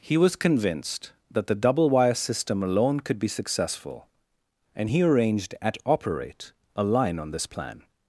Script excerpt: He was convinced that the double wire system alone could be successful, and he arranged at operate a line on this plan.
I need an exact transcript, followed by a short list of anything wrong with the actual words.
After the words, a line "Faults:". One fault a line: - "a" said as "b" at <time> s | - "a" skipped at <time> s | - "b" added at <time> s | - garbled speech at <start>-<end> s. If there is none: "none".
He was convinced that the double wire system alone could be successful, and he arranged at operate a line on this plan.
Faults:
none